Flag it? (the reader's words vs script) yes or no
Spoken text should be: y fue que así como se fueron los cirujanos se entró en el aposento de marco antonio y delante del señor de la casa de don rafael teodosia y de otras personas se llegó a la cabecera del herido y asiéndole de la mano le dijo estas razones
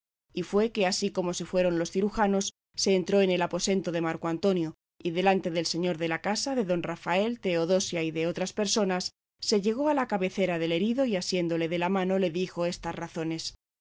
no